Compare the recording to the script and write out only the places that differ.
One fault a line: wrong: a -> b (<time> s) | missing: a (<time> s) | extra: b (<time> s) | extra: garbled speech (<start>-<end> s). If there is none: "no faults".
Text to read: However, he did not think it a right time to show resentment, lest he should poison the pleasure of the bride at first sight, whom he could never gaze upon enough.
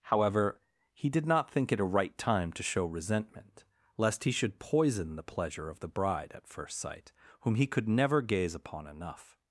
no faults